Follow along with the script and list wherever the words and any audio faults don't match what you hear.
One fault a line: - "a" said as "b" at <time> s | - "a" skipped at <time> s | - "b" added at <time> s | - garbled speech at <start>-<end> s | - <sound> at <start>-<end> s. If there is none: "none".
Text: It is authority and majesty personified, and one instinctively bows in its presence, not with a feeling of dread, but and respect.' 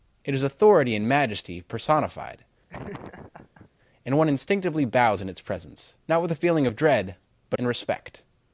- laugh at 2.7-3.7 s